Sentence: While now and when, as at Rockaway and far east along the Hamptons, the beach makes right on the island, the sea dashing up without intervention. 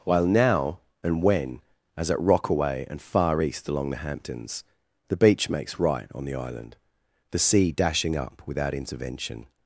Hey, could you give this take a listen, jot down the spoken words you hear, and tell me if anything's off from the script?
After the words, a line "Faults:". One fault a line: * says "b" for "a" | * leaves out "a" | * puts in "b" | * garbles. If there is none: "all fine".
While now and when, as at Rockaway and far east along the Hamptons, the beach makes right on the island, the sea dashing up without intervention.
Faults:
all fine